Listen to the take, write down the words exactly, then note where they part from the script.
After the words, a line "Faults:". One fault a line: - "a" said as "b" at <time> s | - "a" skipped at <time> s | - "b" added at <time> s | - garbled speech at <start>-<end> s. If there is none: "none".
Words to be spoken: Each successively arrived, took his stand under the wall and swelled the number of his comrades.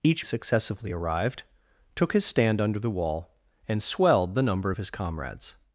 Each successively arrived, took his stand under the wall and swelled the number of his comrades.
Faults:
none